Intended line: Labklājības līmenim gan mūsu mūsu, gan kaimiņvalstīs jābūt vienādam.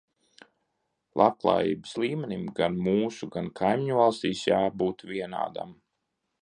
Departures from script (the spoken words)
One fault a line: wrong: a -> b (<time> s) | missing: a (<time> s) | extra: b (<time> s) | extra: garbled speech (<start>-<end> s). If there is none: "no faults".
missing: mūsu (3.3 s)